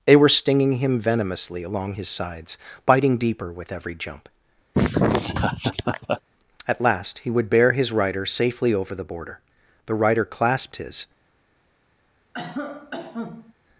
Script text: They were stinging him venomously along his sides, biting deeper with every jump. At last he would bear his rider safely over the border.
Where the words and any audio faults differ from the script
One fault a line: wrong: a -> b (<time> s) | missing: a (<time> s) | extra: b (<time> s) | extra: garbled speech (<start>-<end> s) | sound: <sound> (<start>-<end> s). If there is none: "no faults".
sound: laugh (4.7-6.2 s)
extra: The rider clasped his (9.9 s)
sound: cough (12.3-13.5 s)